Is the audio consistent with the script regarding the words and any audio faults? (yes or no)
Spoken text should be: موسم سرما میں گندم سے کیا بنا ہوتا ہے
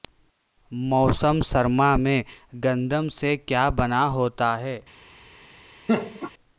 no